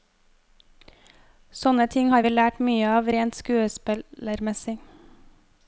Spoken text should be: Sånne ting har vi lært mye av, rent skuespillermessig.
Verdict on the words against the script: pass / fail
pass